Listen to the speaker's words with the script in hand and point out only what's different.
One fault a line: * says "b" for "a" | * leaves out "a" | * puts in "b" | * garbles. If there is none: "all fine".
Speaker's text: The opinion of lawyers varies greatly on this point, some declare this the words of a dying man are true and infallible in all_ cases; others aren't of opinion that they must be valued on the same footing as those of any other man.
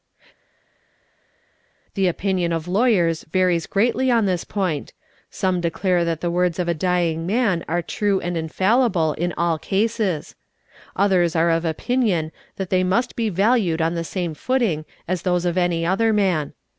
* says "that" for "this"
* says "are" for "aren't"